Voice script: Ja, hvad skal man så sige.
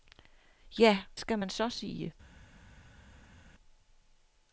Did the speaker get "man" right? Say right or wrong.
right